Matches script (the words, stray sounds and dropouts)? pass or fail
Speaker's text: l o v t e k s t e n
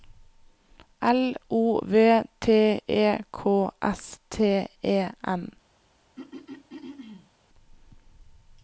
fail